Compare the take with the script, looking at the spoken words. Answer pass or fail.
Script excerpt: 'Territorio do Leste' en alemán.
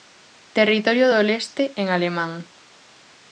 pass